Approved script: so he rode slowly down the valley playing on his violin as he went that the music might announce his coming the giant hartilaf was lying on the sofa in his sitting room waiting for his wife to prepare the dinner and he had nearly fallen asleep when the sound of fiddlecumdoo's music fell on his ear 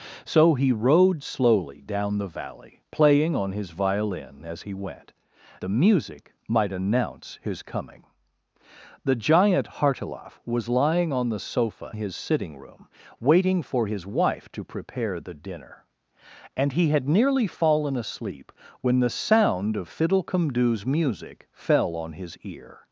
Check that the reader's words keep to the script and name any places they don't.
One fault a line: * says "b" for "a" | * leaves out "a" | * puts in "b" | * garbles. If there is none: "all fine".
* leaves out "that"
* leaves out "in"